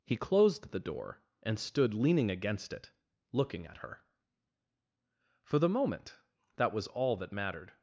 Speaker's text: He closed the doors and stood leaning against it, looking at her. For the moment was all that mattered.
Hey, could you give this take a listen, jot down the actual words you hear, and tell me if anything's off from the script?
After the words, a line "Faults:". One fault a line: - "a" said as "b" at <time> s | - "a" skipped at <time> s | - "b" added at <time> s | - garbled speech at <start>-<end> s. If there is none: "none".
He closed the door and stood leaning against it, looking at her. For the moment that was all that mattered.
Faults:
- "doors" said as "door" at 0.8 s
- "that" added at 6.6 s